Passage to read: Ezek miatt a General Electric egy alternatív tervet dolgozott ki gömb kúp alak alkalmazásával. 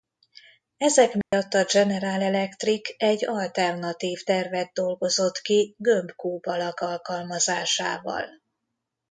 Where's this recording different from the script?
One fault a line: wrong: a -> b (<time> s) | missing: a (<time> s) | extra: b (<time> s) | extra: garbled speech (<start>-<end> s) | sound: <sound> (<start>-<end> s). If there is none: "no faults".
sound: dropout (1.2-1.3 s)